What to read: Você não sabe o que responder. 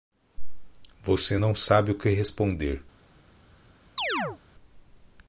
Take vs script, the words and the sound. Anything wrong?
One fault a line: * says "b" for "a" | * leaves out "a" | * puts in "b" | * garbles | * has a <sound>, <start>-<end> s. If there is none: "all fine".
* has a chirp, 4.0-4.4 s